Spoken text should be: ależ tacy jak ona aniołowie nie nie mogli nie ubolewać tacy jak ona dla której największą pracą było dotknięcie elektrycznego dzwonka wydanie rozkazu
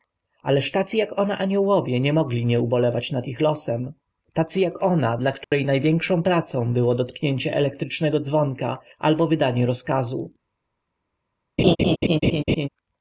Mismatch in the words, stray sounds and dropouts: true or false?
true